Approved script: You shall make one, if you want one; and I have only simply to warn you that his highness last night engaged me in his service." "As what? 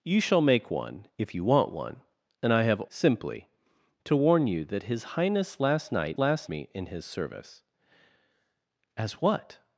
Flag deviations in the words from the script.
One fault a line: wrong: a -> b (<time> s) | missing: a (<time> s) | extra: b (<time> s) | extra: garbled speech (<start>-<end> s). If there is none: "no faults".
missing: only (2.8 s)
wrong: engaged -> last (6.2 s)